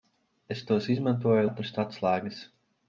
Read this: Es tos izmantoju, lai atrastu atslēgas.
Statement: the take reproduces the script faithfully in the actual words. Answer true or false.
false